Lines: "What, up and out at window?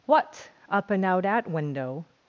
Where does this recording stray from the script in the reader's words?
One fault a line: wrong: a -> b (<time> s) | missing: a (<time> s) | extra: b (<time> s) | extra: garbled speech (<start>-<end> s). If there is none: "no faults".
no faults